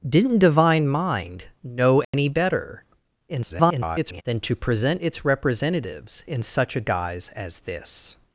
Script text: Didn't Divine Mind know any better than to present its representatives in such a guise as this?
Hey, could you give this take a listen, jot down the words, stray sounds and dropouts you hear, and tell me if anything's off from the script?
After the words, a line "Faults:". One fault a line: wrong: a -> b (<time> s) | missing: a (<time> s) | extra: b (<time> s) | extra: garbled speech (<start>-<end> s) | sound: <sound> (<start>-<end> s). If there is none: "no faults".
Didn't Divine Mind know any better [garbled] than to present its representatives in such a guise as this?
Faults:
sound: dropout (2.0-2.1 s)
extra: garbled speech (3.3-4.2 s)